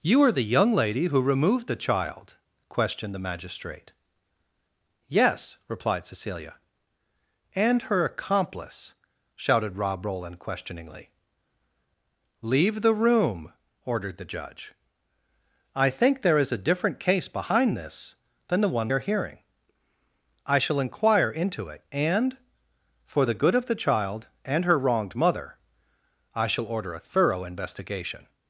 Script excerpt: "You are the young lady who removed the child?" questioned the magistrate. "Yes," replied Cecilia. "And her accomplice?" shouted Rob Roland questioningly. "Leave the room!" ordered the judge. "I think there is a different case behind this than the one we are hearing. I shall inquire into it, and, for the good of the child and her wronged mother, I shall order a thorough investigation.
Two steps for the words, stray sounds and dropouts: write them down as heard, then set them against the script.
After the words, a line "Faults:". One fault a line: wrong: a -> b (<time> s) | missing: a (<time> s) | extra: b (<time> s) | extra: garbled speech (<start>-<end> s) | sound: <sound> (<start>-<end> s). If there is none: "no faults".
"You are the young lady who removed the child?" questioned the magistrate. "Yes," replied Cecilia. "And her accomplice?" shouted Rob Roland questioningly. "Leave the room!" ordered the judge. "I think there is a different case behind this than the one are hearing. I shall inquire into it, and, for the good of the child and her wronged mother, I shall order a thorough investigation.
Faults:
missing: we (18.9 s)